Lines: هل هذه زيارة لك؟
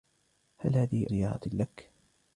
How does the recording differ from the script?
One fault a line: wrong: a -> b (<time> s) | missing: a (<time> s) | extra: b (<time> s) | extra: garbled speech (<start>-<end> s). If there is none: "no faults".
no faults